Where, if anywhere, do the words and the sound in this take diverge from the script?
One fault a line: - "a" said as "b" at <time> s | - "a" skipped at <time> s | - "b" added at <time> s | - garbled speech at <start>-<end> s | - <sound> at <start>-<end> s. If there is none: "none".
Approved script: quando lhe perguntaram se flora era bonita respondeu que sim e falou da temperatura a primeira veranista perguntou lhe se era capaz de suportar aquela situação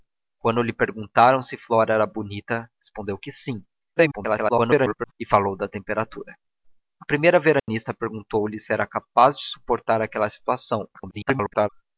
- garbled speech at 4.0-5.1 s
- dropout at 7.6-7.7 s
- garbled speech at 10.9-11.7 s